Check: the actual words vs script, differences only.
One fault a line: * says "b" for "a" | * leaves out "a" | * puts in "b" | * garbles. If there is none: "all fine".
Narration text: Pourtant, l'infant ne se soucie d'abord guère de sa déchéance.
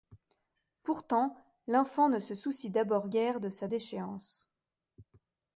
all fine